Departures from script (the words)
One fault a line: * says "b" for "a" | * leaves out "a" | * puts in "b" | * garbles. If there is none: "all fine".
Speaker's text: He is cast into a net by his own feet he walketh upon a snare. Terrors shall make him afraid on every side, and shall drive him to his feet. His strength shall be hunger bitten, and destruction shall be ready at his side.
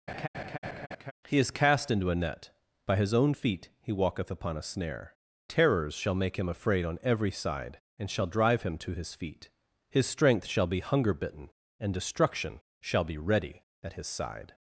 all fine